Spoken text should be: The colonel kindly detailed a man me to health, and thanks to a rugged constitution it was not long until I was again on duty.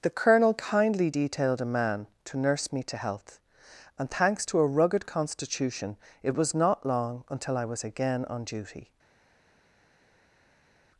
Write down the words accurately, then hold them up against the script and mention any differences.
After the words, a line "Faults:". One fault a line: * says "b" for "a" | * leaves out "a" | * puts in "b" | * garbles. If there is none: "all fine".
The colonel kindly detailed a man to nurse me to health, and thanks to a rugged constitution it was not long until I was again on duty.
Faults:
* puts in "to nurse"